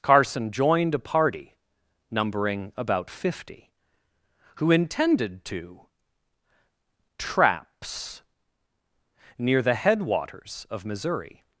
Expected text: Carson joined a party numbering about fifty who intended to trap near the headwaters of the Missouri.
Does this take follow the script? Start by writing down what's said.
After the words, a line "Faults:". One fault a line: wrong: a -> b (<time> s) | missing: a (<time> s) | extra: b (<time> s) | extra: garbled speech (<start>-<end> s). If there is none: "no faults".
Carson joined a party numbering about fifty who intended to traps near the headwaters of Missouri.
Faults:
wrong: trap -> traps (7.2 s)
missing: the (10.8 s)